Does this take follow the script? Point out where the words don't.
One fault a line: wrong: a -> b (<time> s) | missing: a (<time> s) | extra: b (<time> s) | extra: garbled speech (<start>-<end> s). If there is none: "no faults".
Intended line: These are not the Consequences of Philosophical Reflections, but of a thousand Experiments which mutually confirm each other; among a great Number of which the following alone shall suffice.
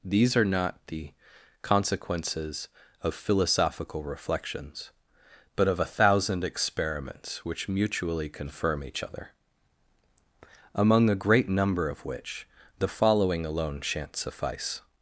wrong: shall -> shan't (13.8 s)